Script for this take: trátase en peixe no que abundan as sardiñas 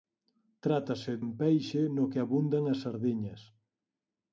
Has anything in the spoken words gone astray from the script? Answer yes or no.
no